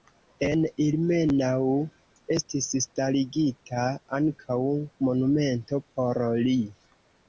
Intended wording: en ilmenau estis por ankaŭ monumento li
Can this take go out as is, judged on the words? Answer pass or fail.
fail